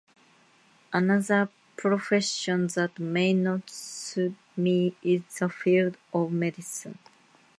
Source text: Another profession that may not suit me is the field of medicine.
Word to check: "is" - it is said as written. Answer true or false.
true